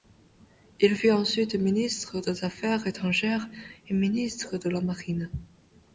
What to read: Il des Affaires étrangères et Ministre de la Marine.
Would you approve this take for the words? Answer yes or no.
no